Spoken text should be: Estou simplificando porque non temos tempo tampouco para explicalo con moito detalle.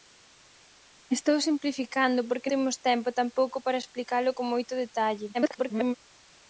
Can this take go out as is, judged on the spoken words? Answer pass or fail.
fail